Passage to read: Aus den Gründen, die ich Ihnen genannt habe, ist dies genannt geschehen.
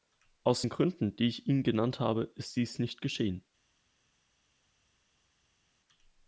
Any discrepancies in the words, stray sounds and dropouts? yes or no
yes